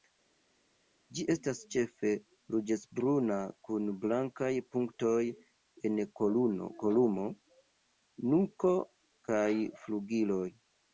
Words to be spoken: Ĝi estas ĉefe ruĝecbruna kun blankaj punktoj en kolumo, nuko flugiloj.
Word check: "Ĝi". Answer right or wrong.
right